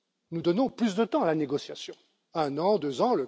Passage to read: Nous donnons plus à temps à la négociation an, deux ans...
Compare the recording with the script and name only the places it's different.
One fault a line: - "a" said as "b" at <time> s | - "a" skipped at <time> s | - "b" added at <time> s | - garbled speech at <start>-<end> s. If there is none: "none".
- "à" said as "de" at 0.9 s
- "un" added at 2.3 s